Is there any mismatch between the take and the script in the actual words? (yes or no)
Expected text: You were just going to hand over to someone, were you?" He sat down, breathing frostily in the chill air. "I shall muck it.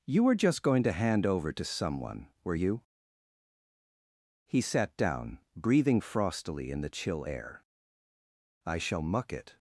no